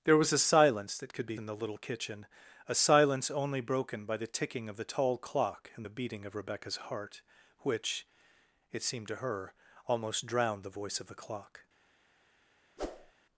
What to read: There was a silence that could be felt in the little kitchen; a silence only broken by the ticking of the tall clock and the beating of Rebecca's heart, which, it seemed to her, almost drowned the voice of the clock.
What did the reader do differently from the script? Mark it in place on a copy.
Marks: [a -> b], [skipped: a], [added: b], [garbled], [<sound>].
There was a silence that could be [skipped: felt] in the little kitchen; a silence only broken by the ticking of the tall clock and the beating of Rebecca's heart, which, it seemed to her, almost drowned the voice of the clock. [whoosh]